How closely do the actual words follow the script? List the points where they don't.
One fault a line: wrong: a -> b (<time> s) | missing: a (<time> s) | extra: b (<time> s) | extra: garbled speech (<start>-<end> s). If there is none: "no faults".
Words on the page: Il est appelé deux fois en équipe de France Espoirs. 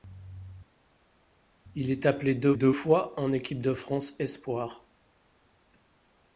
extra: deux (2.5 s)